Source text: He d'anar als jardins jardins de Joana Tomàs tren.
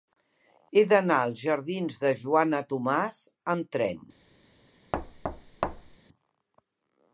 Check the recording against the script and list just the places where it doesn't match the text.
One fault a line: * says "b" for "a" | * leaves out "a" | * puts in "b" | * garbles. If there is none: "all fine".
* leaves out "jardins"
* puts in "amb"